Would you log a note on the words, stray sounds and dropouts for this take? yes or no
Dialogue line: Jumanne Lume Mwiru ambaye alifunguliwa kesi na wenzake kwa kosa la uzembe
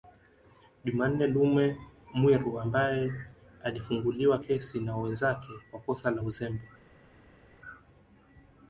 no